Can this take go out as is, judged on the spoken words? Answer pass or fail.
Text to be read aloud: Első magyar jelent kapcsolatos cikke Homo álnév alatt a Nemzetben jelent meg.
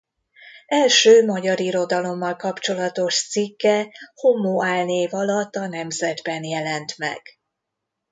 fail